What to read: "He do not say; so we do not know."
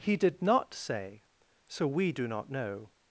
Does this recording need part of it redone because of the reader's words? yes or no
yes